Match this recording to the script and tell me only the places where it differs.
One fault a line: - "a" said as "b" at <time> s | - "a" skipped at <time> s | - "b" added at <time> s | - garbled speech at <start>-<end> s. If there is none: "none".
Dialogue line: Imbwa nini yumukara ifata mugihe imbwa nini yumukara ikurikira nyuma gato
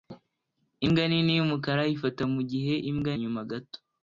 - "nini yumukara ikurikira" skipped at 3.1 s